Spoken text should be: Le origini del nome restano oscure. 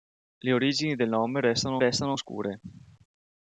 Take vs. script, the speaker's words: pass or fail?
fail